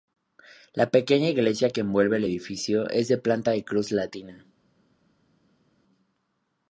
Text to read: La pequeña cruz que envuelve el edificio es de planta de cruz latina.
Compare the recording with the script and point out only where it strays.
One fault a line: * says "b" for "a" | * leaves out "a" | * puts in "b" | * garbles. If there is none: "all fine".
* says "iglesia" for "cruz"